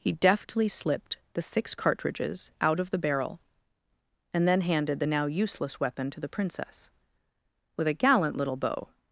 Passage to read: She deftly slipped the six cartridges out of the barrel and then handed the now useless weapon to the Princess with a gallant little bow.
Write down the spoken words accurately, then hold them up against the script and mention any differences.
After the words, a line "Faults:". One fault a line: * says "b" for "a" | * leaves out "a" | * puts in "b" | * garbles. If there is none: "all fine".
He deftly slipped the six cartridges out of the barrel and then handed the now useless weapon to the Princess with a gallant little bow.
Faults:
* says "He" for "She"